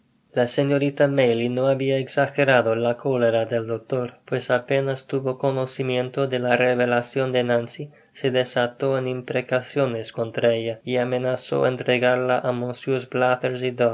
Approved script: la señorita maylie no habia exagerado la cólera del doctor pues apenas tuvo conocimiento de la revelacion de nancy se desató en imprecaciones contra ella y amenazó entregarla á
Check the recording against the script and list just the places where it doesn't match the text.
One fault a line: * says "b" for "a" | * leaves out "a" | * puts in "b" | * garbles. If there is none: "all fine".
all fine